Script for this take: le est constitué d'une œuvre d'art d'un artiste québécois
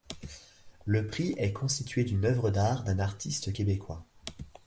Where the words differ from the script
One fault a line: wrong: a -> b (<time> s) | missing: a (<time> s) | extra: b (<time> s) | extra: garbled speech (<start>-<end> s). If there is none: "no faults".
extra: prix (1.1 s)